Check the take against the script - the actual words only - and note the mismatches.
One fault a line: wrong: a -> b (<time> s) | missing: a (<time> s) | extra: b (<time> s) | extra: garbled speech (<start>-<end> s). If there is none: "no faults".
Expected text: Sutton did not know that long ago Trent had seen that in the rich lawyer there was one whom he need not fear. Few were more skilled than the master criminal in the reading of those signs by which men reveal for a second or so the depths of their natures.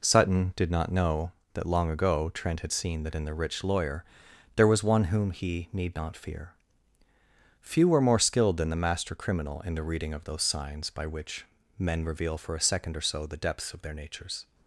no faults